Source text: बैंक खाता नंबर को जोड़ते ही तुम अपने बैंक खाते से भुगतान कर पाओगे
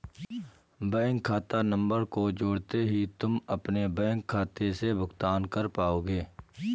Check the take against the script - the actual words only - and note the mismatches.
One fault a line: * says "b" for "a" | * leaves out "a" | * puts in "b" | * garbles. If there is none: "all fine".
all fine